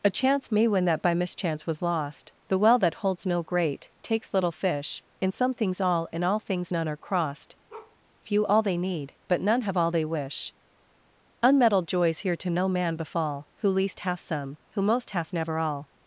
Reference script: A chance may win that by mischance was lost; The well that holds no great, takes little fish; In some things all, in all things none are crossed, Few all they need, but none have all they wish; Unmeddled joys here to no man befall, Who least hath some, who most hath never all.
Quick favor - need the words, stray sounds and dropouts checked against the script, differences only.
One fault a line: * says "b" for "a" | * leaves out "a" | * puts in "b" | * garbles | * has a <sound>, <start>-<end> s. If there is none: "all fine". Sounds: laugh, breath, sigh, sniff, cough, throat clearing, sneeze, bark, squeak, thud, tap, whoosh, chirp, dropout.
* has a bark, 7.7-8.0 s